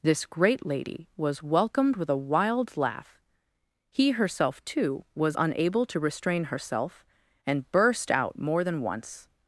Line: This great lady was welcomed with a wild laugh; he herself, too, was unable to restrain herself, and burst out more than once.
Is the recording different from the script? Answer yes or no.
no